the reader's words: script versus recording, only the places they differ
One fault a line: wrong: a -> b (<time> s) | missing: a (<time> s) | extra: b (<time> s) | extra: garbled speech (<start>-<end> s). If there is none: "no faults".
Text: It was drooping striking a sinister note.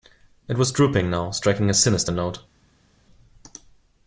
extra: now (1.1 s)